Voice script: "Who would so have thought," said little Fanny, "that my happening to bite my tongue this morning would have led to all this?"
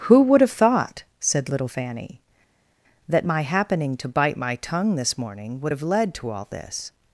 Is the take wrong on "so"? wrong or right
wrong